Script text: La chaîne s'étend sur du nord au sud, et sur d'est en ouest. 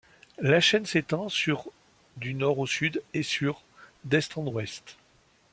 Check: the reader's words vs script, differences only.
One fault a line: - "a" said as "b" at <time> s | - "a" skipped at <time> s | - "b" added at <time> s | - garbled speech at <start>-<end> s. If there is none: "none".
none